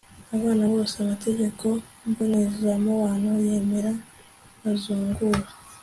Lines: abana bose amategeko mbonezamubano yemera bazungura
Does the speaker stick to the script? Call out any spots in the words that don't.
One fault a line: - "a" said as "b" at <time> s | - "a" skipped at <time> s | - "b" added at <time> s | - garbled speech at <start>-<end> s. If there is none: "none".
none